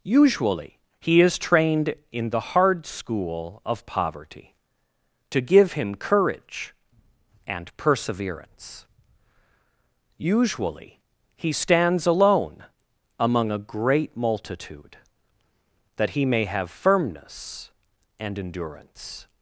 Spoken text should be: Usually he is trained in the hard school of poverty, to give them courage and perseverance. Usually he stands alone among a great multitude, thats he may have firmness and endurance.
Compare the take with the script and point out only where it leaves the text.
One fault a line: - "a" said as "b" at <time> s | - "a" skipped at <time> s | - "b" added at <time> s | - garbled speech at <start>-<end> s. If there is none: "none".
- "them" said as "him" at 5.7 s
- "thats" said as "that" at 15.9 s